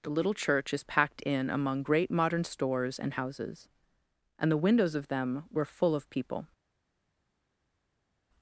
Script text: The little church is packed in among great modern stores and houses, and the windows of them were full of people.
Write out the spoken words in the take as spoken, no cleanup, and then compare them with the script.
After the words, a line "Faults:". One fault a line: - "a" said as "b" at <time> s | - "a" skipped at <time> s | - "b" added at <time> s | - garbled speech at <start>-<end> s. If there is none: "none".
The little church is packed in among great modern stores and houses, and the windows of them were full of people.
Faults:
none